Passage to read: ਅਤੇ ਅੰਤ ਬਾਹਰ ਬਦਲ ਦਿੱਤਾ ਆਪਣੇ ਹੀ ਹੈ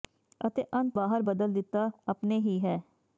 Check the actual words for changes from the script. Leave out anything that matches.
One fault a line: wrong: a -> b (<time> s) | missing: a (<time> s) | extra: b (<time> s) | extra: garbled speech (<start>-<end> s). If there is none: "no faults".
no faults